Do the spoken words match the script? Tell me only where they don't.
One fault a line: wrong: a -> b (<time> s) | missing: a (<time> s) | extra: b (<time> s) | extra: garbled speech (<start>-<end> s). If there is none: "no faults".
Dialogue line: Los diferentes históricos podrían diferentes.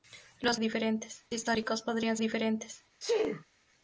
no faults